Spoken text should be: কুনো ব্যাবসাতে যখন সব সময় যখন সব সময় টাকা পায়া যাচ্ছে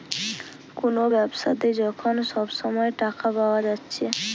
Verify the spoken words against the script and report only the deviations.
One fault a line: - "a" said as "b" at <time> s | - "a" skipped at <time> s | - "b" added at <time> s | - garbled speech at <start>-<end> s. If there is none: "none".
- "যখন সব সময়" skipped at 2.9 s